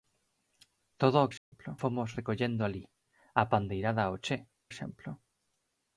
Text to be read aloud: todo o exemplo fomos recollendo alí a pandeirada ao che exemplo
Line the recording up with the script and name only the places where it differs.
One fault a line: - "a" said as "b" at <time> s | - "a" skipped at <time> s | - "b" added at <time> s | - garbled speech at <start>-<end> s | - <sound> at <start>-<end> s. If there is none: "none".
- dropout at 1.4-1.5 s